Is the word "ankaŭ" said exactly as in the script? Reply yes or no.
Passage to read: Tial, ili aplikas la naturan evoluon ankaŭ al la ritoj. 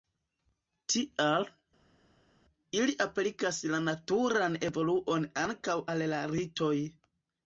yes